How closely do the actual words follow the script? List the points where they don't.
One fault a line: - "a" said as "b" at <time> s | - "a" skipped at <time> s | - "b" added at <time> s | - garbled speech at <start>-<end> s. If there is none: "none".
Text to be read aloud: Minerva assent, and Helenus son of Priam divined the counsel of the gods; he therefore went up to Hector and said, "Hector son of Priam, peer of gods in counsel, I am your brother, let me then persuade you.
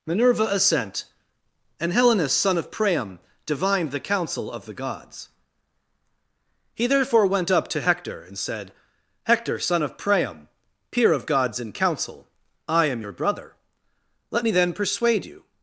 none